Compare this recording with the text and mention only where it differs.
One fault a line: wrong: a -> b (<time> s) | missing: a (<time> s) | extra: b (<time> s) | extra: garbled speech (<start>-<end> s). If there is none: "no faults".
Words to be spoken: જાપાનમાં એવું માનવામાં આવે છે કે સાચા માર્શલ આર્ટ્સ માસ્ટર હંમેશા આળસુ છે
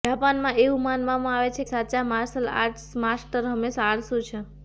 missing: કે (1.6 s)